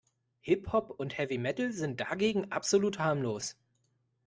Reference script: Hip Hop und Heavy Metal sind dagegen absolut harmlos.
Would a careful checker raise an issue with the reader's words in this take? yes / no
no